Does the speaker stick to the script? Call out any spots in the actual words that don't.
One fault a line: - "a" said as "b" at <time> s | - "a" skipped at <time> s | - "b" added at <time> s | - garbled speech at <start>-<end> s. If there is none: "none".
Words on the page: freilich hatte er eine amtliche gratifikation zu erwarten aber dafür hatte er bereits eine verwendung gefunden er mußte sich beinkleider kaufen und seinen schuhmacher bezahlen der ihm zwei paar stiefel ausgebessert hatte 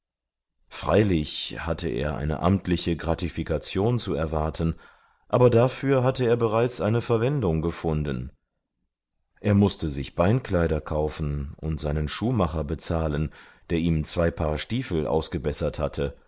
none